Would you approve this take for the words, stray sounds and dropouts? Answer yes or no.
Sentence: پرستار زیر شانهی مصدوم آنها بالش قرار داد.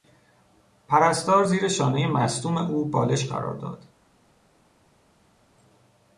no